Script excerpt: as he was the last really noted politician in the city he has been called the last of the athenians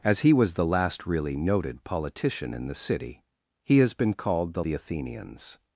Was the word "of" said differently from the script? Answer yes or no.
yes